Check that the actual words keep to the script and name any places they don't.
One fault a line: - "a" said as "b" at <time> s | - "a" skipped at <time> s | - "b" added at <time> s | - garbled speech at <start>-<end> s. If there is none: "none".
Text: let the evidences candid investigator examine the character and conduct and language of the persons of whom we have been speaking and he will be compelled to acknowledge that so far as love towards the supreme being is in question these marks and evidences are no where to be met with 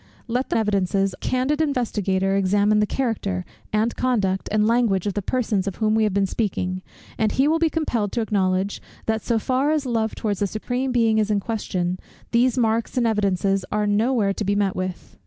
none